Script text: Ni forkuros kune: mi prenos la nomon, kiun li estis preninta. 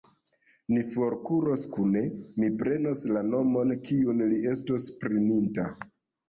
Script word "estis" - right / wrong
wrong